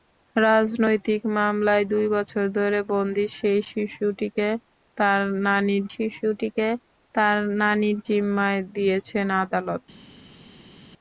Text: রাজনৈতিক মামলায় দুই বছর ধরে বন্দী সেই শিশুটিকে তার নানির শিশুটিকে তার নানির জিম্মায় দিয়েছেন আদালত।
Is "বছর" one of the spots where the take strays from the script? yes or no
no